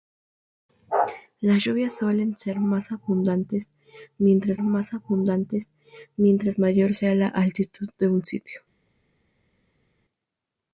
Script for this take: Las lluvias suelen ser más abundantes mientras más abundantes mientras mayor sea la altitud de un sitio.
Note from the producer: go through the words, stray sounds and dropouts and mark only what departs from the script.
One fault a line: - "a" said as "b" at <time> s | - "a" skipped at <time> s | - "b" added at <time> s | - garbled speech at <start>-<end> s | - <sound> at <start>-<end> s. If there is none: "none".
none